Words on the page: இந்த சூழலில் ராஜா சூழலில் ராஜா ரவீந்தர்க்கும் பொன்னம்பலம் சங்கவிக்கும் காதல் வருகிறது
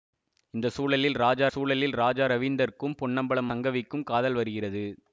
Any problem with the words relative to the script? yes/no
no